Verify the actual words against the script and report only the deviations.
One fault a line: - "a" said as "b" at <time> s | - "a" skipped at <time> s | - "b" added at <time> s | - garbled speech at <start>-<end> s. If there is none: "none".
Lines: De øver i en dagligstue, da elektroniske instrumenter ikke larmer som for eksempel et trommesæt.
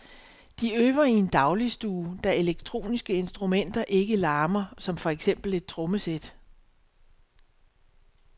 none